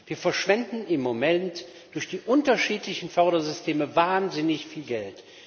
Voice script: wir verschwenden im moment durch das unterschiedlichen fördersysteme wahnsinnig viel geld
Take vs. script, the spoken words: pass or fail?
fail